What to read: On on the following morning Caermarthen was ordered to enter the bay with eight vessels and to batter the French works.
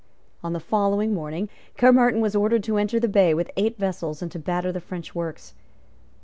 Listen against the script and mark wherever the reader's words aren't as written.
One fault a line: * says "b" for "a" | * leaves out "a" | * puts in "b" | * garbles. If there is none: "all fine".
* leaves out "on"